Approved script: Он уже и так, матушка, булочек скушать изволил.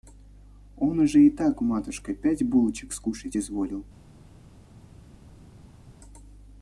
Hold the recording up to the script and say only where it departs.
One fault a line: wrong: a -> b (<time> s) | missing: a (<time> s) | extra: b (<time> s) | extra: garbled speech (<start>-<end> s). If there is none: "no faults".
extra: пять (2.1 s)